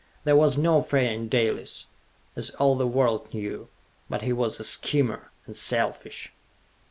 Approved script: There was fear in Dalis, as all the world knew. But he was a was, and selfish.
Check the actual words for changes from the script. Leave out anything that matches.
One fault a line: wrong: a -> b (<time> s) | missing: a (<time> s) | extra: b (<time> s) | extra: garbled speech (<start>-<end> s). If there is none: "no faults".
extra: no (0.6 s)
wrong: was -> schemer (4.6 s)